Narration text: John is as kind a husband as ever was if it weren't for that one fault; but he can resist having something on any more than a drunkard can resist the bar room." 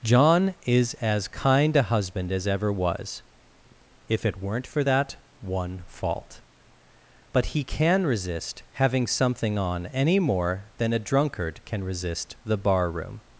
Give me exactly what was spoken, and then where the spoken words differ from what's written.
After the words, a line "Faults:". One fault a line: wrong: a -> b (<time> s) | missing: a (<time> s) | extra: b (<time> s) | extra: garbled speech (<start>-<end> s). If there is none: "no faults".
John is as kind a husband as ever was if it weren't for that one fault; but he can resist having something on any more than a drunkard can resist the bar room."
Faults:
no faults